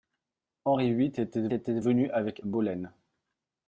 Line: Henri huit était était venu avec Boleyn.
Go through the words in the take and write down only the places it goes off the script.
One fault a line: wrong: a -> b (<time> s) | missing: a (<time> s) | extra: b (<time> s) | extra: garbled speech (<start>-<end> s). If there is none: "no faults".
no faults